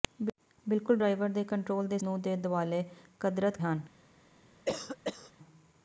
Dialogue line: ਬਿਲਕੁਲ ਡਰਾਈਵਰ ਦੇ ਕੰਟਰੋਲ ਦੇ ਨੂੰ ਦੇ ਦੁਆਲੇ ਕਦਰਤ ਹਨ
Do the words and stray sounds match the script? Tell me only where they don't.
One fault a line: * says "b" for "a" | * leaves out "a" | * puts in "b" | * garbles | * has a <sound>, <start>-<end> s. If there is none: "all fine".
* has a cough, 4.6-5.3 s